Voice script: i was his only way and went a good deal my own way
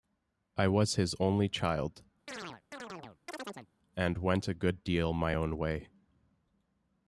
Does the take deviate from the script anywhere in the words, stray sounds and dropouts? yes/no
yes